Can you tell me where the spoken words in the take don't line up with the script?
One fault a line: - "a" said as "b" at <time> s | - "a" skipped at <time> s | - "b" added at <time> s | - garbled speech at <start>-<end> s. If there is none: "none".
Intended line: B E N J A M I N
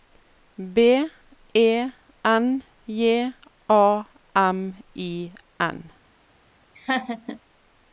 none